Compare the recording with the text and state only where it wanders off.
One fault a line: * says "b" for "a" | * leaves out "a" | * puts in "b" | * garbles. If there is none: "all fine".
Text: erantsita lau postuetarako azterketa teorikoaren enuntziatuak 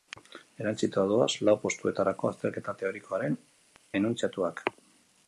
* puts in "doaz"